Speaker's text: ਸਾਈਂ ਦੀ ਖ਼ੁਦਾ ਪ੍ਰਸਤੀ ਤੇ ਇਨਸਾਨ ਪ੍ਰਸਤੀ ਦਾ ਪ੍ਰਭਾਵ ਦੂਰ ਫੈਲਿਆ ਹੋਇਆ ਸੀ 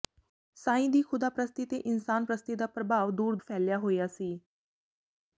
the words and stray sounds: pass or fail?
pass